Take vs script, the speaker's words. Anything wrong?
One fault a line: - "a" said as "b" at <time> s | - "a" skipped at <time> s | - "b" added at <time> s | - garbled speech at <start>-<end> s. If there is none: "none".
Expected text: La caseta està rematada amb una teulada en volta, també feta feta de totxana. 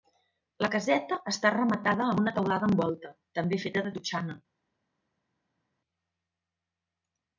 - "feta" skipped at 3.8 s